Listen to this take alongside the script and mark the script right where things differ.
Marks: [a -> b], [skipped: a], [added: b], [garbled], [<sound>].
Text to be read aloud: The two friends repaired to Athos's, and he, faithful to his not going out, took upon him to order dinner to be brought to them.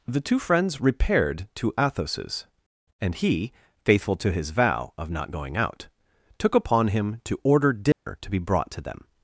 The two friends repaired to Athos's, and he, faithful to his [added: vow of] not going out, took upon him to order dinner [dropout] to be brought to them.